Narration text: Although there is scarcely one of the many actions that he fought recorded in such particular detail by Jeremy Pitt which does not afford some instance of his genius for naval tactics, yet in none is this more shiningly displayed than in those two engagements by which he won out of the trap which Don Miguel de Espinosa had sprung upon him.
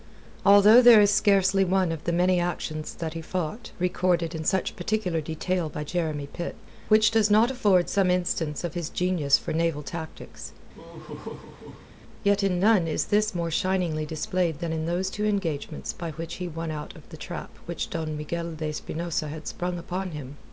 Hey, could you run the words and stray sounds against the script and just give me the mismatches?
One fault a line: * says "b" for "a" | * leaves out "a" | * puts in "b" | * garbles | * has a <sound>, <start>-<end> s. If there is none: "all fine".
* has a laugh, 10.7-11.9 s